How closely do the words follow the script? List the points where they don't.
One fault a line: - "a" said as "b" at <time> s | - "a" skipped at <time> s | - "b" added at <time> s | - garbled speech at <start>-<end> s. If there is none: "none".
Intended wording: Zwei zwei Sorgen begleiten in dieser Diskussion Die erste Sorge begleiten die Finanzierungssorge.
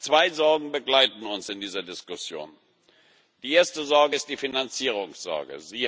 - "zwei" skipped at 0.3 s
- "uns" added at 1.3 s
- "begleiten" said as "ist" at 4.1 s